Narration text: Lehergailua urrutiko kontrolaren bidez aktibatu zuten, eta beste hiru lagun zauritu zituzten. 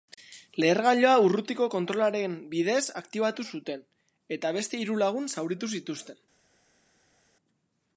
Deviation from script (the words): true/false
false